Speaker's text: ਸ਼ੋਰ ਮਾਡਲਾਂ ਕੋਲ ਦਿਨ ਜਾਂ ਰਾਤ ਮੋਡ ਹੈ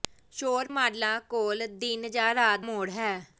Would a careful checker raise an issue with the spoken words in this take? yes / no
no